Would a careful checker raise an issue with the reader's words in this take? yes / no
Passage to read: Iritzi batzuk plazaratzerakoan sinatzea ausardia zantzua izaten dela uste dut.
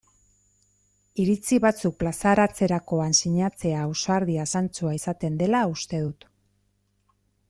no